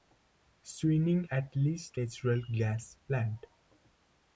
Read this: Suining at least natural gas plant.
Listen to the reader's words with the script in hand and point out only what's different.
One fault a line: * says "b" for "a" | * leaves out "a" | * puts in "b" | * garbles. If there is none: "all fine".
all fine